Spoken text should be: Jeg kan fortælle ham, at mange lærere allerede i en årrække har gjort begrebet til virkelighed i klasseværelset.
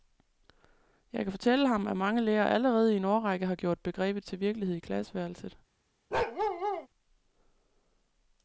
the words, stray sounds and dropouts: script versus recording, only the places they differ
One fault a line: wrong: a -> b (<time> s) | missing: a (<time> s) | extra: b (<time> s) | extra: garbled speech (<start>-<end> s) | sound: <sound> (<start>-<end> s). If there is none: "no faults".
sound: bark (6.1-6.9 s)